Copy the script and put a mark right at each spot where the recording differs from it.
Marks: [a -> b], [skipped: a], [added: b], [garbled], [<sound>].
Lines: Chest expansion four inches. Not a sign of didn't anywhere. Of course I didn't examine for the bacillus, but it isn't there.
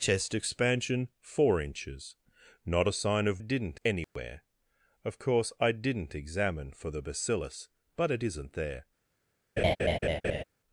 Chest expansion four inches. Not a sign of didn't anywhere. [dropout] Of course I didn't examine for the bacillus, but it isn't there. [laugh]